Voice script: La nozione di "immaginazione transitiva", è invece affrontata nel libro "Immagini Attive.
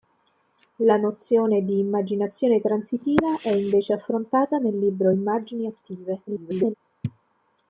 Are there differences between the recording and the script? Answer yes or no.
yes